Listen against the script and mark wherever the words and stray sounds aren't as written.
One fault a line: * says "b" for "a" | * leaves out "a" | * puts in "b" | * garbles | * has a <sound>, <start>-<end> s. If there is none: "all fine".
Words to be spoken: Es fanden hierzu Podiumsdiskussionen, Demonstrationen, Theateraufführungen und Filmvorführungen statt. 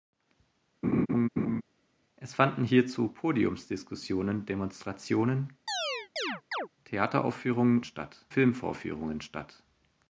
* has a laugh, 0.8-1.6 s
* has a chirp, 5.7-6.7 s
* says "statt" for "und"